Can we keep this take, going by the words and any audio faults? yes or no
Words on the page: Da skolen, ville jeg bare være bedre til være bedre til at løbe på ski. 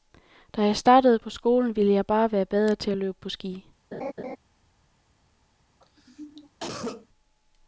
no